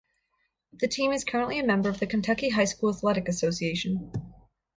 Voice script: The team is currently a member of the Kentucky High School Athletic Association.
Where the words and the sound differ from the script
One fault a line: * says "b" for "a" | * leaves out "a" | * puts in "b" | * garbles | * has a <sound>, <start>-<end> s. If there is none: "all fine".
all fine